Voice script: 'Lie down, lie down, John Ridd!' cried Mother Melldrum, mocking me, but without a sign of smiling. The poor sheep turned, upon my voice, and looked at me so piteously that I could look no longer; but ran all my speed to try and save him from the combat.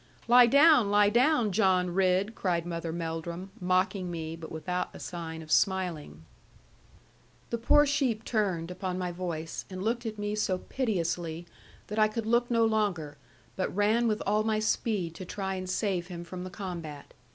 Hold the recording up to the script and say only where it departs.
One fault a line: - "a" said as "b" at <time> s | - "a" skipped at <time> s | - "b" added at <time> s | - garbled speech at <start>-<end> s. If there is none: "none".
- "with" added at 14.1 s